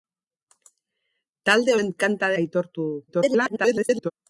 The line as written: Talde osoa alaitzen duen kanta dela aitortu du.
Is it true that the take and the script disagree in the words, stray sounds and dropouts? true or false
true